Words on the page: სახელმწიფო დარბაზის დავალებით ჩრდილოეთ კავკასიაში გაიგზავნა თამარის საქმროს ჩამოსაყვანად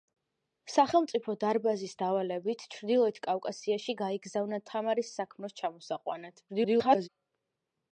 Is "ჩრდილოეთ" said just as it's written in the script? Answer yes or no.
yes